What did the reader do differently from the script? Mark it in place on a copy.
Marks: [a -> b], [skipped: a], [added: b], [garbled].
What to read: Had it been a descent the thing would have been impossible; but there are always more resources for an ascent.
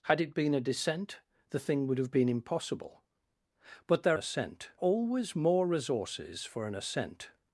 Had it been a descent the thing would have been impossible; but there [are -> ascent] always more resources for an ascent.